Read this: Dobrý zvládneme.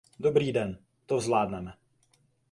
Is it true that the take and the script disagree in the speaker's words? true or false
true